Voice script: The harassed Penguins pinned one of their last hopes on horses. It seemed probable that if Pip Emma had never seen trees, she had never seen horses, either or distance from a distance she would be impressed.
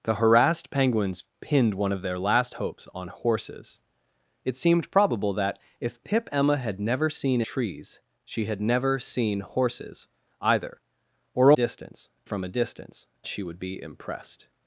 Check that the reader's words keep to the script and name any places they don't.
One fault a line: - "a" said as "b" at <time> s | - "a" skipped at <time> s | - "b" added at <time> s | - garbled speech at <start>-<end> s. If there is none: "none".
none